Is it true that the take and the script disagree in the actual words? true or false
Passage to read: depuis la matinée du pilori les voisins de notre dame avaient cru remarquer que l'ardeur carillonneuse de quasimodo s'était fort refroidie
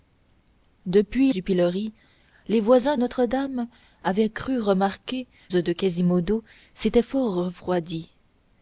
true